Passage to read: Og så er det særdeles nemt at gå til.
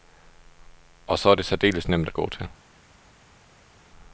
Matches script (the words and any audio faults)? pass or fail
pass